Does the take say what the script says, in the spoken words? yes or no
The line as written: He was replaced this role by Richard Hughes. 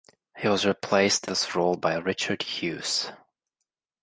yes